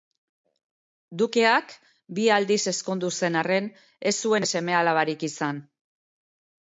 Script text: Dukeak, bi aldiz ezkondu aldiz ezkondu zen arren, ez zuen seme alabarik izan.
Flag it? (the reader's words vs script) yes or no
yes